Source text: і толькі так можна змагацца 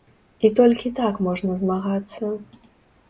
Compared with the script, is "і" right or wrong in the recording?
right